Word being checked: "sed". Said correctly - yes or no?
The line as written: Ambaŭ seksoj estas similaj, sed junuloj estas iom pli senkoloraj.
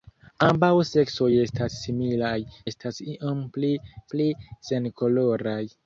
no